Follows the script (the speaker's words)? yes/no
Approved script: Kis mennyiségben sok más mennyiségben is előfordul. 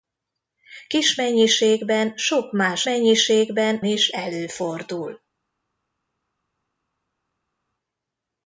yes